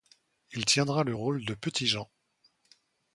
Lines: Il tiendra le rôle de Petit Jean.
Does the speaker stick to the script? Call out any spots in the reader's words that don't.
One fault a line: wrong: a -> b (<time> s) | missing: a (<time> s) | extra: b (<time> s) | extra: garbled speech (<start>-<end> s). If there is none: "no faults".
no faults